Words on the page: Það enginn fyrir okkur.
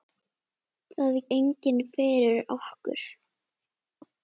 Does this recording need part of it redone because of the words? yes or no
no